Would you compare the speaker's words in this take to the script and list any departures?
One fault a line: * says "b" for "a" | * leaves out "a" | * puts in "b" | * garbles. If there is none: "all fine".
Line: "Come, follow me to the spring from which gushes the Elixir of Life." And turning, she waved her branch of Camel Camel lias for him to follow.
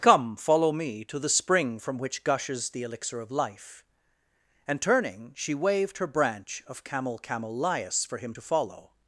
all fine